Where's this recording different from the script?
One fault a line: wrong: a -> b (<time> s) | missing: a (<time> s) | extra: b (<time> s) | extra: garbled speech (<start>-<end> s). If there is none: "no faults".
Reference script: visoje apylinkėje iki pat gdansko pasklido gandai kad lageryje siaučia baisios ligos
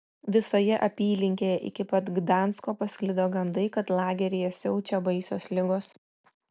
no faults